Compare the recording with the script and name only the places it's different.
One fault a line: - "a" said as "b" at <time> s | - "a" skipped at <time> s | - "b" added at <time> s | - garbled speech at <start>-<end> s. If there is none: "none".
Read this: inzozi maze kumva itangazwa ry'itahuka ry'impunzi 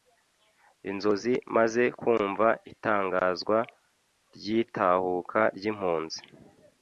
none